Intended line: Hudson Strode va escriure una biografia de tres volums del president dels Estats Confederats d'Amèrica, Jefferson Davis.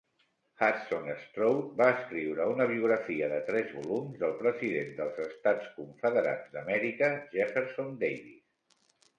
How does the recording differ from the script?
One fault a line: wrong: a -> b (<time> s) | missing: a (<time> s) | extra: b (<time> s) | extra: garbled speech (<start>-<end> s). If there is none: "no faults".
no faults